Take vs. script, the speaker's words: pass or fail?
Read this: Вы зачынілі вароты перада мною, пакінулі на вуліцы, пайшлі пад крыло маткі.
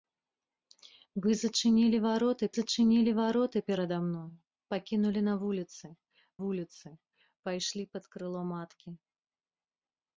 fail